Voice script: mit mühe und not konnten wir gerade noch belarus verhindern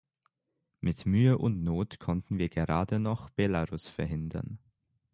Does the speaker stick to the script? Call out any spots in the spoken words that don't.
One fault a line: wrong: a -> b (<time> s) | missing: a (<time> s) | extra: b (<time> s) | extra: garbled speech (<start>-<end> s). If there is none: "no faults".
no faults